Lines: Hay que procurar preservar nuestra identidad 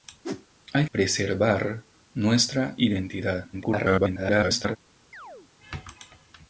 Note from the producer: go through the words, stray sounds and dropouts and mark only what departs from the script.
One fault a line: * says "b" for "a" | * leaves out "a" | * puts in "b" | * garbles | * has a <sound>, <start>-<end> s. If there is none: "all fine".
* has a whoosh, 0.2-0.5 s
* leaves out "que procurar"
* garbles
* has a chirp, 5.1-5.5 s